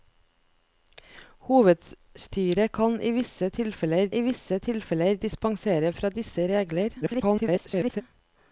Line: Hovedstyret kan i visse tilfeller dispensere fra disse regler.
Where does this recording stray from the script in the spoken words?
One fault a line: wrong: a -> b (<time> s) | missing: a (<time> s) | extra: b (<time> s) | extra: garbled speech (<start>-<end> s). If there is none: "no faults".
extra: i visse tilfeller (4.1 s)
extra: garbled speech (7.0-8.0 s)